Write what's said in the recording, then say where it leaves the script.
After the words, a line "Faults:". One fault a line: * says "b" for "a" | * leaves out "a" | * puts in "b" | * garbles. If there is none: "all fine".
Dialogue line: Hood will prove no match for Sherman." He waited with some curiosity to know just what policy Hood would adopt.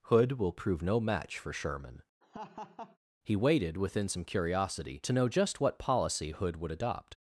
Hood will prove no match for Sherman." He waited within some curiosity to know just what policy Hood would adopt.
Faults:
* says "within" for "with"